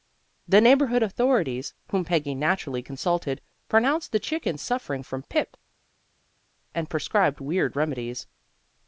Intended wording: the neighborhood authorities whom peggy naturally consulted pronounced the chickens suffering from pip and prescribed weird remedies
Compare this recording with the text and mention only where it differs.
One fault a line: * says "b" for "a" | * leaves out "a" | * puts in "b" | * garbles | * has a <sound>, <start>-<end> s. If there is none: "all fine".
all fine